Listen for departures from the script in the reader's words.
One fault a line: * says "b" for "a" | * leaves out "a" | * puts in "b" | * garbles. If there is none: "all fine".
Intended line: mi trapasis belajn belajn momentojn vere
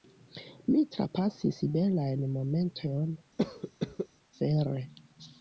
* leaves out "belajn"